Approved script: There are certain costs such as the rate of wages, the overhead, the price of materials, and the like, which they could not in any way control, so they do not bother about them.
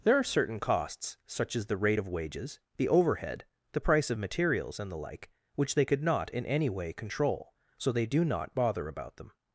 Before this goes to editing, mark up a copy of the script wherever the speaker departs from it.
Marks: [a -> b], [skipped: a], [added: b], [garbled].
There are certain costs such as the rate of wages, the overhead, the price of materials, and the like, which they could not in any way control, so they do not bother about them.